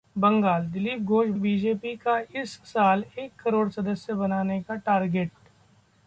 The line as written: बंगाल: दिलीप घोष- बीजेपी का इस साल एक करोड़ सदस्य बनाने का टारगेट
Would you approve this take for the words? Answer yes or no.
yes